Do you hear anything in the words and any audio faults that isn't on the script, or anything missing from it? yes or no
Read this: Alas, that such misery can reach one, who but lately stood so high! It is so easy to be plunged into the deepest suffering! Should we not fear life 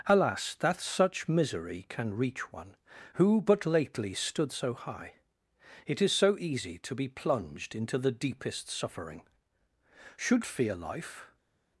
yes